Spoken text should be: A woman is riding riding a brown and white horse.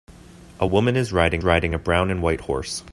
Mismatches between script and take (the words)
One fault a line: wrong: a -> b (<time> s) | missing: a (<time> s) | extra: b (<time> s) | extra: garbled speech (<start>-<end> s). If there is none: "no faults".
no faults